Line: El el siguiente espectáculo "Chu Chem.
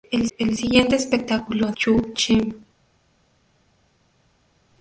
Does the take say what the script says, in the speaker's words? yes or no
yes